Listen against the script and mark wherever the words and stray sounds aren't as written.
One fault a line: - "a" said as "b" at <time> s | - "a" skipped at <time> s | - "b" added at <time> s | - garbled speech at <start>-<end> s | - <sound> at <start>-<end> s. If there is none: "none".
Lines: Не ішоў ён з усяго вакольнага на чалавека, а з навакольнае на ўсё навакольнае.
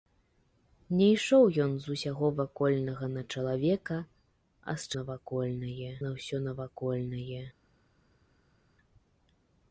none